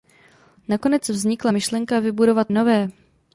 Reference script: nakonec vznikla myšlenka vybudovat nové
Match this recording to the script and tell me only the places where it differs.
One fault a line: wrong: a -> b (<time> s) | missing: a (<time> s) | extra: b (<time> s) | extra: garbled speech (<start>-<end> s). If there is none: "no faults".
no faults